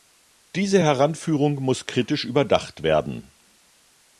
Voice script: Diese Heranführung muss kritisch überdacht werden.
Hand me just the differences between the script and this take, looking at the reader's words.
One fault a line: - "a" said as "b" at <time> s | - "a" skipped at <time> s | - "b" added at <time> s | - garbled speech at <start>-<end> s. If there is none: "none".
none